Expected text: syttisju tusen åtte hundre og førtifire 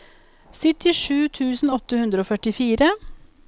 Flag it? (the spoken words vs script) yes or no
no